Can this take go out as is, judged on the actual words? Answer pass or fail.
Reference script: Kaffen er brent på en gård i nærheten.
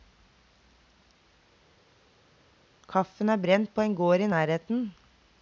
pass